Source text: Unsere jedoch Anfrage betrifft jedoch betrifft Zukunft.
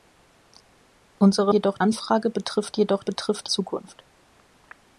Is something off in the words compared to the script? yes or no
no